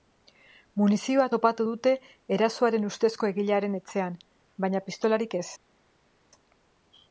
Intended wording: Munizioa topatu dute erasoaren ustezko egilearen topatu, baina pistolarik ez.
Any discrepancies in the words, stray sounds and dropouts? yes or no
yes